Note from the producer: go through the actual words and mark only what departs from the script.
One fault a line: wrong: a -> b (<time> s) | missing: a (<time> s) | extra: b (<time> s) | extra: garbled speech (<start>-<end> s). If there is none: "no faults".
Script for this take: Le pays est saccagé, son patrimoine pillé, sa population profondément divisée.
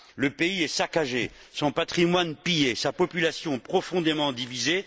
no faults